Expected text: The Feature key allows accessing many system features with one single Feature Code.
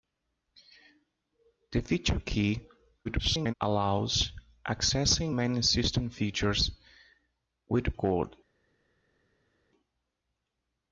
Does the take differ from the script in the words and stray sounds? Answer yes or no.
yes